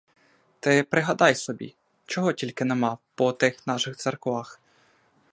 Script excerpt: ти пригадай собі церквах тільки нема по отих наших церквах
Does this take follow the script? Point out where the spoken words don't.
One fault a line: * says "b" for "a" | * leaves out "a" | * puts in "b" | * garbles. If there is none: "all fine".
* says "чого" for "церквах"